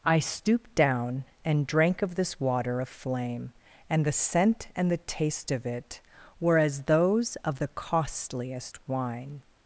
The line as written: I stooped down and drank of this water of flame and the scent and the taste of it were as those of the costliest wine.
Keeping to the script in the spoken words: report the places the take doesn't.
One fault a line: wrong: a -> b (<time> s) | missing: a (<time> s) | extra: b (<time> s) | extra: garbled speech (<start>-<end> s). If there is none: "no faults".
no faults